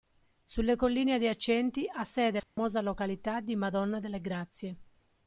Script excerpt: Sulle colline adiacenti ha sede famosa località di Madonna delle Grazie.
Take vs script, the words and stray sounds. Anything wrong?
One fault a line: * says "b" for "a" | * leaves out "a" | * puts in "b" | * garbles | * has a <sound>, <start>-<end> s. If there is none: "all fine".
* has a dropout, 2.4-2.6 s